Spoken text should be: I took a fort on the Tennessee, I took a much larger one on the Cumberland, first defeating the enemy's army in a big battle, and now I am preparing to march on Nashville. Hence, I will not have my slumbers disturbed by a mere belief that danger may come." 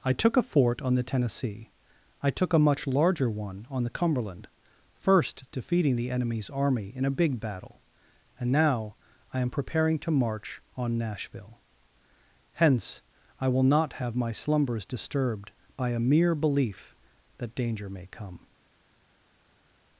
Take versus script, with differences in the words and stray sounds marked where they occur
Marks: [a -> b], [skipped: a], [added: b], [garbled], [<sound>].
I took a fort on the Tennessee, I took a much larger one on the Cumberland, first defeating the enemy's army in a big battle, and now I am preparing to march on Nashville. Hence, I will not have my slumbers disturbed by a mere belief that danger may come."